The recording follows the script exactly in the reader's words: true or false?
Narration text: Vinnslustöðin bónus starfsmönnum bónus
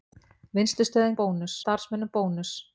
true